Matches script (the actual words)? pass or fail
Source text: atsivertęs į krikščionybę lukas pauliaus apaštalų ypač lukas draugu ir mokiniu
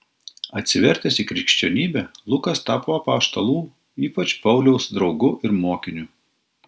fail